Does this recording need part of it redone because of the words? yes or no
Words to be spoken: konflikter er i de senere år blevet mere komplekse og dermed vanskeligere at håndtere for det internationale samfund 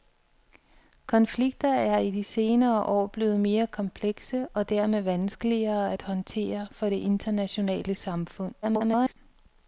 yes